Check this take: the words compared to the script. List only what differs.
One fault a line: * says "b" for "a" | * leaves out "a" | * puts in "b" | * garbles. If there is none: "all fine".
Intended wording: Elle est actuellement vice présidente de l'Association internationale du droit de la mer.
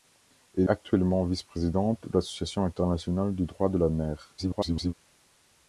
* leaves out "est"
* garbles